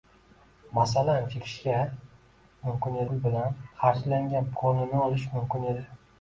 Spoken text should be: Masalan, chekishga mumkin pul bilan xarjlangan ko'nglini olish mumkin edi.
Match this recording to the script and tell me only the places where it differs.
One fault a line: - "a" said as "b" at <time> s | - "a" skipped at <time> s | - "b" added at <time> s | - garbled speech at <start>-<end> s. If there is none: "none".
none